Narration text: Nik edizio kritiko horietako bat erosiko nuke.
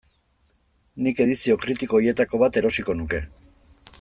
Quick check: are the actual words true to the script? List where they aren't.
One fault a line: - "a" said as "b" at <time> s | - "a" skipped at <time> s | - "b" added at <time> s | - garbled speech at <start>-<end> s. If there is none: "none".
none